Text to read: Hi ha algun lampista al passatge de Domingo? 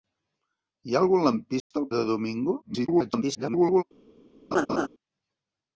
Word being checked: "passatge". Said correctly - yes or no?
no